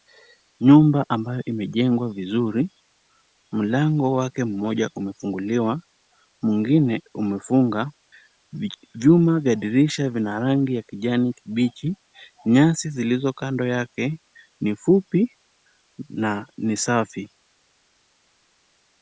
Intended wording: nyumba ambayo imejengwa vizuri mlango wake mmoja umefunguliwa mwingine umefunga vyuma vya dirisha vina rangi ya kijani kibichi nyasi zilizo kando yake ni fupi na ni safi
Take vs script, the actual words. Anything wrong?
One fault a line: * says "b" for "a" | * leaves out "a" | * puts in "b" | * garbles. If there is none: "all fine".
all fine